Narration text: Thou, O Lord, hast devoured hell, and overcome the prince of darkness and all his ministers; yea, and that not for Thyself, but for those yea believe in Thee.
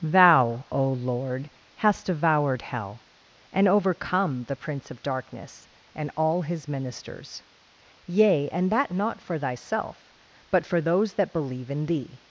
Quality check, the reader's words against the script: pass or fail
fail